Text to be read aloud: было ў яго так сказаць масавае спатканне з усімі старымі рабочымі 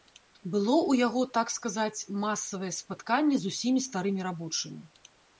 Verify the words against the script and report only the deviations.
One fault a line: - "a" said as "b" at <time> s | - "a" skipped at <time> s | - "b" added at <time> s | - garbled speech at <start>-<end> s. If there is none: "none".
none